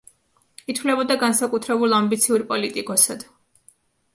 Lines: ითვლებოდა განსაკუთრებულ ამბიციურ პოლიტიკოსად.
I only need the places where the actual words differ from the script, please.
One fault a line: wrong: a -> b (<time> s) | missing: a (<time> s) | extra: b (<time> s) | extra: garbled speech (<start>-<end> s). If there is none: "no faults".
no faults